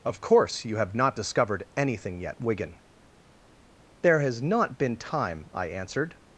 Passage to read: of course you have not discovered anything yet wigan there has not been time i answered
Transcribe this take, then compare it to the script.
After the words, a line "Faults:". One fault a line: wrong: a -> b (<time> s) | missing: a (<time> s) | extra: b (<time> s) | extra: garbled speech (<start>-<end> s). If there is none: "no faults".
of course you have not discovered anything yet wigan there has not been time i answered
Faults:
no faults